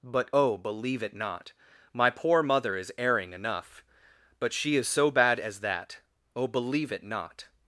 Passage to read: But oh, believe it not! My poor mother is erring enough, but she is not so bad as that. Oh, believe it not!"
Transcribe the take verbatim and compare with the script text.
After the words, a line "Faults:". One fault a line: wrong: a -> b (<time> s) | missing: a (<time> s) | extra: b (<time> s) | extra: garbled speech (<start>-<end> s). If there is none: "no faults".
But oh, believe it not! My poor mother is erring enough, but she is so bad as that. Oh, believe it not!"
Faults:
missing: not (4.9 s)